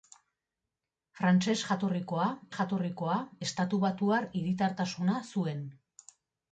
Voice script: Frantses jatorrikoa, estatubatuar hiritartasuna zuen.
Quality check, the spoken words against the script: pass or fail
fail